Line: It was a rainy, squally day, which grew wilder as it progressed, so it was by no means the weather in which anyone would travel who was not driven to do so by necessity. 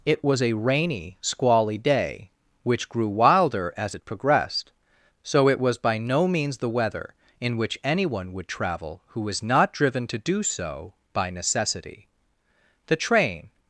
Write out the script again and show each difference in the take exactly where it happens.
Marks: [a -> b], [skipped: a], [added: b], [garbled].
It was a rainy, squally day, which grew wilder as it progressed, so it was by no means the weather in which anyone would travel who was not driven to do so by necessity. [added: The train]